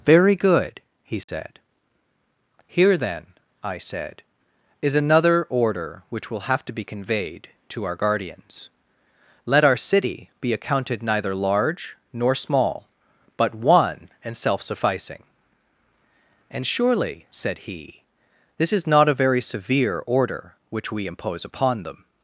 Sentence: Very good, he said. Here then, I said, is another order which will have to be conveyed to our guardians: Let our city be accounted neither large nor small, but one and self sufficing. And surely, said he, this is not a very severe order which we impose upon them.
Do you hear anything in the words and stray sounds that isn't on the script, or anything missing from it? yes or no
yes